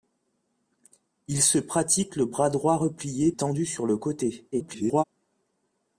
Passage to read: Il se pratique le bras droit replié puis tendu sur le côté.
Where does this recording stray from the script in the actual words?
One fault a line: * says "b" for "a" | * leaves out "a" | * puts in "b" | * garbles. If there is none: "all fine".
* leaves out "puis"
* garbles